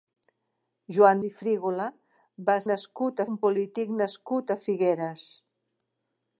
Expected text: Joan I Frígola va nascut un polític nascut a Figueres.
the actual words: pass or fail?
pass